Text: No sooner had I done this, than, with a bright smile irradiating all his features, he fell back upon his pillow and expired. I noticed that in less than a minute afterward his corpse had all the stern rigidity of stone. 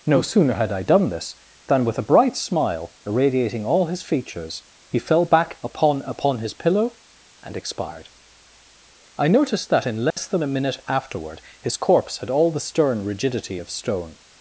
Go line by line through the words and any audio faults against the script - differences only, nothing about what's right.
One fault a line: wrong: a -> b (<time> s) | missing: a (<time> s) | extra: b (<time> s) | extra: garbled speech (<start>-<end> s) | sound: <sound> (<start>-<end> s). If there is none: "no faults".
extra: upon (6.0 s)
sound: dropout (10.1-10.2 s)